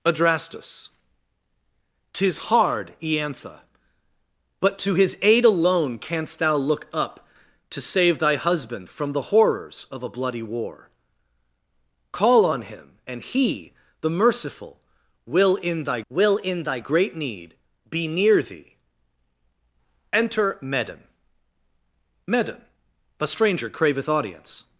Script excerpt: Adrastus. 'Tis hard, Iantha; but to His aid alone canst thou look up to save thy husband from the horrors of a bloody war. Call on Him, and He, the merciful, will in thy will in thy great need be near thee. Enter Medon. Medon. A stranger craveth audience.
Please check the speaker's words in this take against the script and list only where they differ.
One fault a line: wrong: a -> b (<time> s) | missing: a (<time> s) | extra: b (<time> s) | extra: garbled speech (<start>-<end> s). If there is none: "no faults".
no faults